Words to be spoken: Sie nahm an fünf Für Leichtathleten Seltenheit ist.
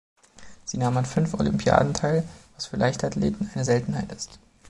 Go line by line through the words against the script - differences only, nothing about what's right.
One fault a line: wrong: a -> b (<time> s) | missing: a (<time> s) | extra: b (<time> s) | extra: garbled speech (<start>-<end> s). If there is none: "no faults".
extra: Olympiaden teil was (1.4 s)
extra: eine (3.5 s)